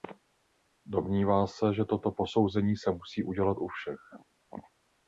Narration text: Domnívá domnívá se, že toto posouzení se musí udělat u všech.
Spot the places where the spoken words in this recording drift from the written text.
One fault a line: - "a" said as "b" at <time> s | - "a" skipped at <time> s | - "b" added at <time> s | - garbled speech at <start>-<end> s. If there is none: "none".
- "domnívá" skipped at 1.5 s